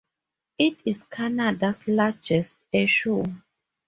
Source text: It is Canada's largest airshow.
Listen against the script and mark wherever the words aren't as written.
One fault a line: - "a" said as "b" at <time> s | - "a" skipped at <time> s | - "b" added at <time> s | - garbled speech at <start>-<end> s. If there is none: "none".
none